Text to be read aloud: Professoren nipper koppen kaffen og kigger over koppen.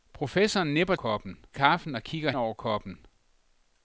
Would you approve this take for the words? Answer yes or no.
yes